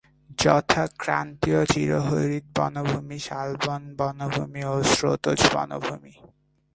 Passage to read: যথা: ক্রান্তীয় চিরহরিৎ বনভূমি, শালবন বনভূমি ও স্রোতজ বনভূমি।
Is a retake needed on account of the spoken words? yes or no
no